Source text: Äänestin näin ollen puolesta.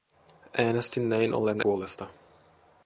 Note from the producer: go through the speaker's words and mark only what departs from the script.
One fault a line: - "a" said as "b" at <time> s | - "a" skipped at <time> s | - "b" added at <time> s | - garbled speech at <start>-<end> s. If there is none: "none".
none